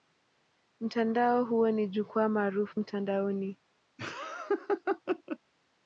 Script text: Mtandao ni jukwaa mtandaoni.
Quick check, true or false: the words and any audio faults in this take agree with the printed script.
false